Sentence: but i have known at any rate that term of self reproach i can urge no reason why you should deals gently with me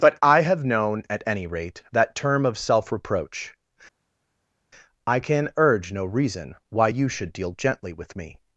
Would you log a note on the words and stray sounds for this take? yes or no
yes